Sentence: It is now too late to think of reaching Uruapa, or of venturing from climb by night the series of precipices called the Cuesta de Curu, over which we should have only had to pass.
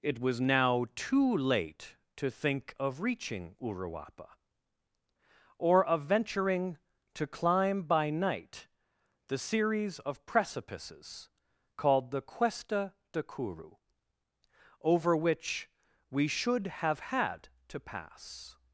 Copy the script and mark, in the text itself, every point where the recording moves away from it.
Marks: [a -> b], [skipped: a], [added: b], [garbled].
It [is -> was] now too late to think of reaching Uruapa, or of venturing [from -> to] climb by night the series of precipices called the Cuesta de Curu, over which we should have [skipped: only] had to pass.